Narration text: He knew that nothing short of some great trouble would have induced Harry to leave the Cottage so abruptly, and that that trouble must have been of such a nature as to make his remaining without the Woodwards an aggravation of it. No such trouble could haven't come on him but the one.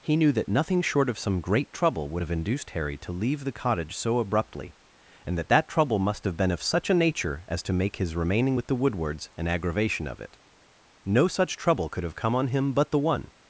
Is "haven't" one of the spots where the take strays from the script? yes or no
yes